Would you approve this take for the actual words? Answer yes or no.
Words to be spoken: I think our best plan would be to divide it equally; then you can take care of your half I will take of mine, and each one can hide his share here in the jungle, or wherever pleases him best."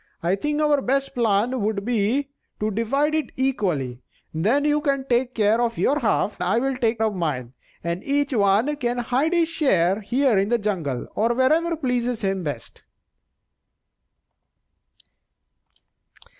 yes